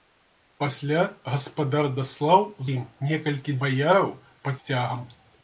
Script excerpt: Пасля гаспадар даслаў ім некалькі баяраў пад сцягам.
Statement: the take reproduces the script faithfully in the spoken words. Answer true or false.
true